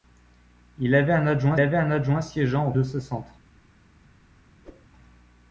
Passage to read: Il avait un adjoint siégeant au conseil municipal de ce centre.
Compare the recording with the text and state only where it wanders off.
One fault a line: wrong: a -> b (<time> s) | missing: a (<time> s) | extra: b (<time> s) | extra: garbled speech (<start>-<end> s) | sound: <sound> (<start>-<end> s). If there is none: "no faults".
extra: avait un adjoint (1.6 s)
missing: conseil municipal (2.7 s)
sound: whoosh (4.6-4.9 s)